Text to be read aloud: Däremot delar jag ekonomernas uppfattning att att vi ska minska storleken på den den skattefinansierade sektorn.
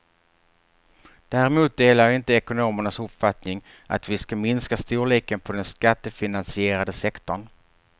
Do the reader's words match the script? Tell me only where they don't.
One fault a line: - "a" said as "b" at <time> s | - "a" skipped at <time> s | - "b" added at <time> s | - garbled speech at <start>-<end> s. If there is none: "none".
- "inte" added at 2.1 s
- "att" skipped at 4.1 s
- "den" skipped at 5.7 s